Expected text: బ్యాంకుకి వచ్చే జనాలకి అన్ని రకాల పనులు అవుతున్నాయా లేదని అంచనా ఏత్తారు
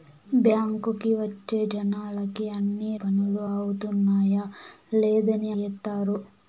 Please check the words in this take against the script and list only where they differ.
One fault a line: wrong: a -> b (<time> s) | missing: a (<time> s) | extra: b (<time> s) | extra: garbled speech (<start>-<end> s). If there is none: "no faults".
missing: రకాల (2.9 s)
missing: అంచనా (5.5 s)